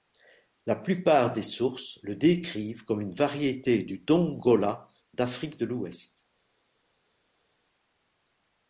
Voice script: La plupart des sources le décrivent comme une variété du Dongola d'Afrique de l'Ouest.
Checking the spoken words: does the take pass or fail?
pass